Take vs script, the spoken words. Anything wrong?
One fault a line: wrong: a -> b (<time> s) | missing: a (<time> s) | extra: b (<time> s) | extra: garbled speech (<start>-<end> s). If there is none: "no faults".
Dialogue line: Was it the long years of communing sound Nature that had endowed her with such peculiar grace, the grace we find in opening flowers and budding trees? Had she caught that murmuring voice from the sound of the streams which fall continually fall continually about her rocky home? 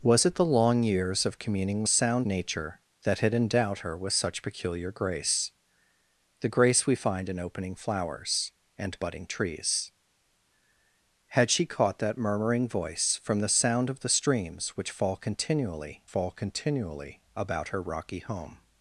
no faults